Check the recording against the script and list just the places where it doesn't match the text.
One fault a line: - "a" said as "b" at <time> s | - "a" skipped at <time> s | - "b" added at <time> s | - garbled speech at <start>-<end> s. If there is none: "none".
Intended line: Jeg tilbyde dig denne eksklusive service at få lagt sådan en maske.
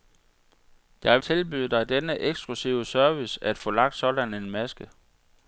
none